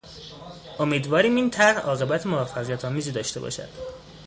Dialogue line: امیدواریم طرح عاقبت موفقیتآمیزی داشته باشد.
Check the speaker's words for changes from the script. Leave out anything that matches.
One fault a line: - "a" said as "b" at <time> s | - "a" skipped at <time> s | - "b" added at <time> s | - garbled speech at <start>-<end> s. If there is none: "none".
- "این" added at 1.4 s